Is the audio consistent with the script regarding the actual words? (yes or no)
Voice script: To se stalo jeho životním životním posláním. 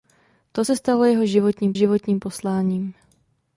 yes